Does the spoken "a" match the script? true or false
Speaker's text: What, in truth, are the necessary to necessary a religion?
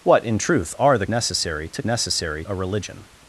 true